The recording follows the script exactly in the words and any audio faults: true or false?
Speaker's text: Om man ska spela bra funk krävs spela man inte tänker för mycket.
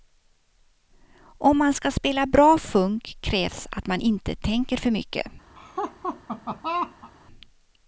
false